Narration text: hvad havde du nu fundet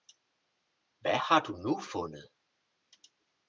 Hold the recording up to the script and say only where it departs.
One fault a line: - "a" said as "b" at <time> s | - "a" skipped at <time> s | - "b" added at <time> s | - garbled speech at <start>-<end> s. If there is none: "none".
- "havde" said as "har" at 1.2 s